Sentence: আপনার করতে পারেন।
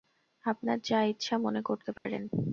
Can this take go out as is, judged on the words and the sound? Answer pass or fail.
fail